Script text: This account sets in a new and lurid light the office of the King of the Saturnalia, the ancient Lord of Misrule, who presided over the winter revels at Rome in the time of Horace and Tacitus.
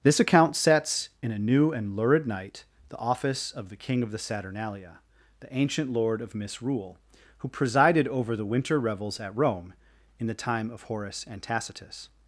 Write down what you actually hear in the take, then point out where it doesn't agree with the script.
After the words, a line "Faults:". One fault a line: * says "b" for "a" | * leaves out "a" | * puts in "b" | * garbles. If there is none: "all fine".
This account sets in a new and lurid night the office of the King of the Saturnalia, the ancient Lord of Misrule, who presided over the winter revels at Rome in the time of Horace and Tacitus.
Faults:
* says "night" for "light"